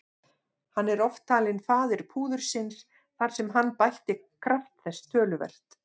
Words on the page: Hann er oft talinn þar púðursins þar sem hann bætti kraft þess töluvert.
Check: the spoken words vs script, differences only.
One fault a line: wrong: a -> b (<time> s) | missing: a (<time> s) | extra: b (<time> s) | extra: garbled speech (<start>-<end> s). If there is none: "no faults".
wrong: þar -> faðir (1.7 s)